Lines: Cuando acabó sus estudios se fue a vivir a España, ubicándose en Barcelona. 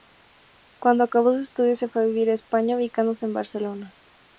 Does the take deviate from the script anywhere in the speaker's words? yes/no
no